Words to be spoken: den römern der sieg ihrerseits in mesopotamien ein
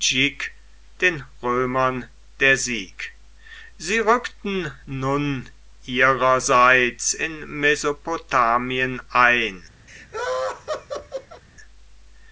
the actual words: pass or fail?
fail